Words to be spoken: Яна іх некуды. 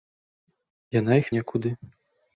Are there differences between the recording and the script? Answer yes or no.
no